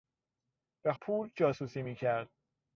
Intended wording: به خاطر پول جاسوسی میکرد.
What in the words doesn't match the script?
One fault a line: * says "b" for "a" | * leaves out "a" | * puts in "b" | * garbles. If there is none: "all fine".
* leaves out "خاطر"